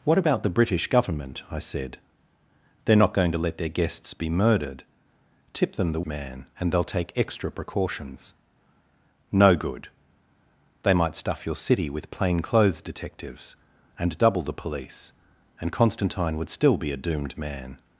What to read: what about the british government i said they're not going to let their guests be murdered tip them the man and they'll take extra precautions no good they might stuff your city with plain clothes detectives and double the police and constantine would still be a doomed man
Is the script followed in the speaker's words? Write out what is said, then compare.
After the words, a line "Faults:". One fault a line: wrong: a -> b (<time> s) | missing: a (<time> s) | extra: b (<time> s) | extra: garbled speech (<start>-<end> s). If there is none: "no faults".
what about the british government i said they're not going to let their guests be murdered tip them the man and they'll take extra precautions no good they might stuff your city with plain clothes detectives and double the police and constantine would still be a doomed man
Faults:
no faults